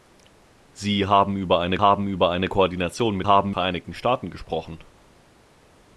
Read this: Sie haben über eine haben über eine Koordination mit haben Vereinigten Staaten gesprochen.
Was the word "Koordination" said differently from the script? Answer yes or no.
no